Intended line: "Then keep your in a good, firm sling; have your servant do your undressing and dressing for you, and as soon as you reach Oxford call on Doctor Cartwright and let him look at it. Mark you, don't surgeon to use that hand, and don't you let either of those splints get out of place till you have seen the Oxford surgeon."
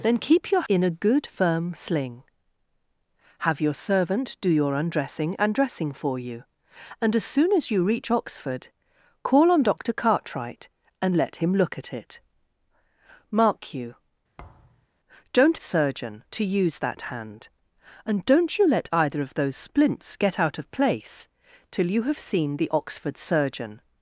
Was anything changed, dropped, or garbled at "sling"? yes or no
no